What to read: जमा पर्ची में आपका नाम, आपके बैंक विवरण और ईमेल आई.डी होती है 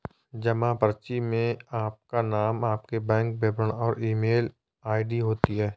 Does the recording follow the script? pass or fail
pass